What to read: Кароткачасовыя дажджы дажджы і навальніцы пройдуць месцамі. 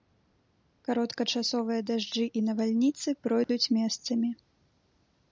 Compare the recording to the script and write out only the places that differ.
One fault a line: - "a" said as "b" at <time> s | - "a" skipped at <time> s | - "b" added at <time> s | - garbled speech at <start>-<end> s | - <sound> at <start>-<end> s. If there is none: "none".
- "дажджы" skipped at 2.2 s
- dropout at 3.4-3.5 s